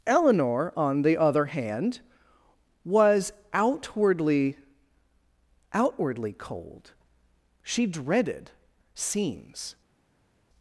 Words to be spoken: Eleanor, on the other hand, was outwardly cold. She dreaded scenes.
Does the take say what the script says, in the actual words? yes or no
no